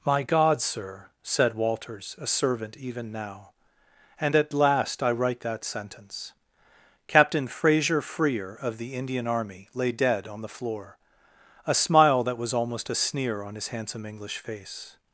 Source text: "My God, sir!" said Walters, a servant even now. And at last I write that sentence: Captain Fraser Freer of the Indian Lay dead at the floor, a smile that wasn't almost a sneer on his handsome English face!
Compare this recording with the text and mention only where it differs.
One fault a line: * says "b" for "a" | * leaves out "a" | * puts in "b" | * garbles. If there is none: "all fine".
* puts in "Army"
* says "on" for "at"
* says "was" for "wasn't"